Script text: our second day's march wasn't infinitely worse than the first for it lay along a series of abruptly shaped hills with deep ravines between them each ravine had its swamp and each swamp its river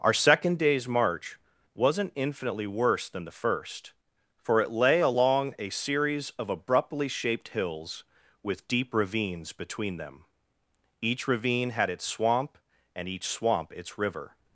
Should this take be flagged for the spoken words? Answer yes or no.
no